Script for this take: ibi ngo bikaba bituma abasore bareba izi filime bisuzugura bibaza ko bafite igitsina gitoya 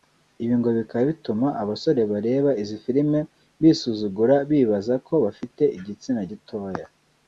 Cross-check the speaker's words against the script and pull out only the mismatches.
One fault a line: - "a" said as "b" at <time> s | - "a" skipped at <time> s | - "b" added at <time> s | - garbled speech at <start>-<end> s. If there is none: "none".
none